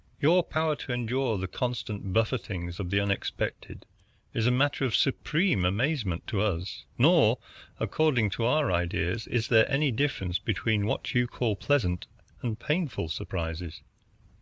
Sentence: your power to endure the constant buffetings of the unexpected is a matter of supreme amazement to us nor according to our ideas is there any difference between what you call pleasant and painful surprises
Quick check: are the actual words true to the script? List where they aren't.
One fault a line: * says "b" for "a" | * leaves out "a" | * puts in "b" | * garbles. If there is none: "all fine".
all fine